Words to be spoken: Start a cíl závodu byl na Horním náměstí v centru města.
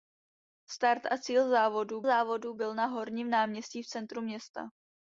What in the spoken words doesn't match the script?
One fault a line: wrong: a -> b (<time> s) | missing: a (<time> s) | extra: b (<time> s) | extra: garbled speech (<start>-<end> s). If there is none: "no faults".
extra: závodu (2.0 s)